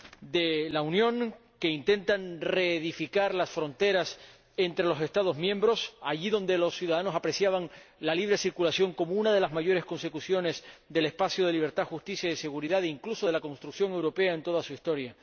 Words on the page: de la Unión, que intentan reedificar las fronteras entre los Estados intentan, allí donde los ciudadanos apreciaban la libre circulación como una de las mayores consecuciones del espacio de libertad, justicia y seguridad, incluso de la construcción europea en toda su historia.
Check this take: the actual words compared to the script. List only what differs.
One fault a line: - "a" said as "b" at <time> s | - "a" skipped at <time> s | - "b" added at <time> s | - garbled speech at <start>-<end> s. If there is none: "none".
- "intentan" said as "miembros" at 5.4 s